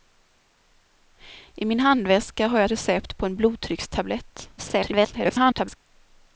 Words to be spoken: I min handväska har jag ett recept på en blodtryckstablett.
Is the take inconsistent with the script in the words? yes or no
yes